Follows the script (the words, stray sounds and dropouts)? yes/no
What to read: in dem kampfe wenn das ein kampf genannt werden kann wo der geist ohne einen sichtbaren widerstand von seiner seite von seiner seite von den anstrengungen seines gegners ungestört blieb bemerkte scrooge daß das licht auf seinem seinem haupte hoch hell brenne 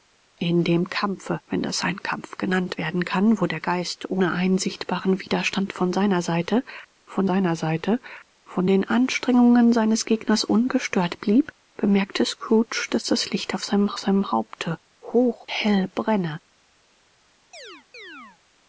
no